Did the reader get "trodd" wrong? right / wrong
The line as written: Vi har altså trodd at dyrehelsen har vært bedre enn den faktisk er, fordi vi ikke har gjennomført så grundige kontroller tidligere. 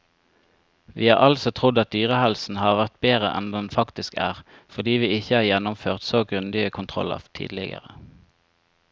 right